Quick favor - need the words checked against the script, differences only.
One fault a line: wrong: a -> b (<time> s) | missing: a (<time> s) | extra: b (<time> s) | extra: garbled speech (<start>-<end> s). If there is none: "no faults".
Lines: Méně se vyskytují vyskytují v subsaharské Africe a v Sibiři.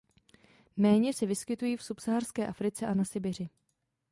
missing: vyskytují (1.8 s)
wrong: v -> na (2.9 s)